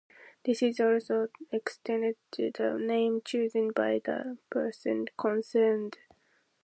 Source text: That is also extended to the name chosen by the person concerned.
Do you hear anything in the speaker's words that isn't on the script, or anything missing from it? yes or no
yes